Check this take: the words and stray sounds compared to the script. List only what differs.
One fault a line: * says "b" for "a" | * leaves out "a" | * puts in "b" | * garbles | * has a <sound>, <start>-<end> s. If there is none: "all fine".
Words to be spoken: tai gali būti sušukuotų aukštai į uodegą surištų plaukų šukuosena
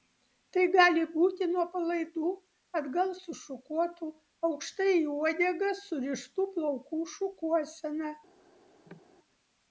* puts in "nuo palaidų atgal"
* has a cough, 8.9-9.0 s